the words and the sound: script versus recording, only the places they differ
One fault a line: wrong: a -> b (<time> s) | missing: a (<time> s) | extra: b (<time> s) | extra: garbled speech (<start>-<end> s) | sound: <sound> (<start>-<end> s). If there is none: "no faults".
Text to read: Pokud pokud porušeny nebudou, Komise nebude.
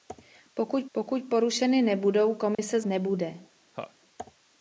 sound: dropout (2.5-2.6 s)
sound: laugh (3.7-3.9 s)